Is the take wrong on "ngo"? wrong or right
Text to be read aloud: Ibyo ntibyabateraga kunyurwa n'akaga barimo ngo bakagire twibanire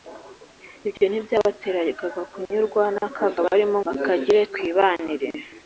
wrong